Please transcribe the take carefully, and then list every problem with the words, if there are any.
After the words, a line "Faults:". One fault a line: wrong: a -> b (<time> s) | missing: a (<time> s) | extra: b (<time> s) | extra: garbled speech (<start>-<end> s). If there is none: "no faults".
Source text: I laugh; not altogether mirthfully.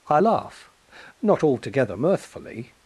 I laugh; not altogether mirthfully.
Faults:
no faults